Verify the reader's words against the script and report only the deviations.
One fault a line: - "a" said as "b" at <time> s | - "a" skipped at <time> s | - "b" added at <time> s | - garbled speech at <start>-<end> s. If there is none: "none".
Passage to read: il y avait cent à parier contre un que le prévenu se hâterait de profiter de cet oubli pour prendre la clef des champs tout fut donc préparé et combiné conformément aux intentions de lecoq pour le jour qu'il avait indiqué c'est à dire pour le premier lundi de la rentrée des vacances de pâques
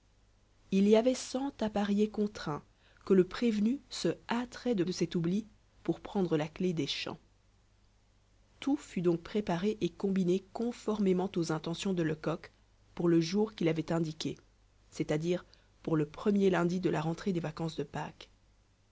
- "profiter" skipped at 4.8 s